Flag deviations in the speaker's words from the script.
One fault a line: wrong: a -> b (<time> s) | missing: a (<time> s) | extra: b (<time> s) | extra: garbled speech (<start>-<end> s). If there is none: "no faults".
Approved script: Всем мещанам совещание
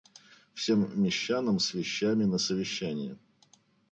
extra: с вещами на (1.6 s)